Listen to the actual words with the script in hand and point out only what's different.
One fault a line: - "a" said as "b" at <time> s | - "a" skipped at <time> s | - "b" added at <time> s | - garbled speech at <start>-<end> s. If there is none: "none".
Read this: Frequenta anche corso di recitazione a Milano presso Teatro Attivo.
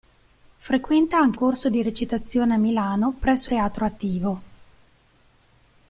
none